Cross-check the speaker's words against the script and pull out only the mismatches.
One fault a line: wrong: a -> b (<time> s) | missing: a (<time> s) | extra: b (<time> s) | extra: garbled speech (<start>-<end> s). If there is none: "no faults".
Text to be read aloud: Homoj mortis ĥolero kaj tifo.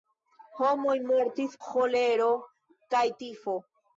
no faults